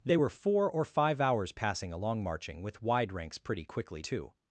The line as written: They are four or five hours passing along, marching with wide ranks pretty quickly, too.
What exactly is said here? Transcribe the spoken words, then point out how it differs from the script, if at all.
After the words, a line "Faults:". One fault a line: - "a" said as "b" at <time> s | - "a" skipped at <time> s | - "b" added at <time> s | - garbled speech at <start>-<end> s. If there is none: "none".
They were four or five hours passing along, marching with wide ranks pretty quickly, too.
Faults:
- "are" said as "were" at 0.2 s